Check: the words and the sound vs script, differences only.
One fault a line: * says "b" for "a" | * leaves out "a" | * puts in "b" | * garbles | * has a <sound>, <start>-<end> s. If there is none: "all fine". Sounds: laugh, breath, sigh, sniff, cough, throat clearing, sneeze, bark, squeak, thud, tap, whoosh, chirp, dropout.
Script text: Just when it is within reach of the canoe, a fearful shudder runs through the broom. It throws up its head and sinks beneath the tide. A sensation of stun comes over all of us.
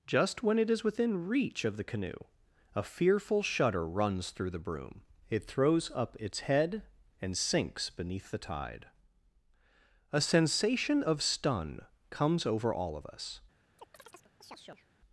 * has a chirp, 13.8-14.9 s